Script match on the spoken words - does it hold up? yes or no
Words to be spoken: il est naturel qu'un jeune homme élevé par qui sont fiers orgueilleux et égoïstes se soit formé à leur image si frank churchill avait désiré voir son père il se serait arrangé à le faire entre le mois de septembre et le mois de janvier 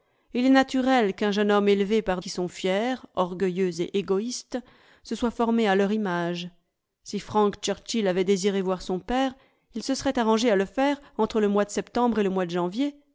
yes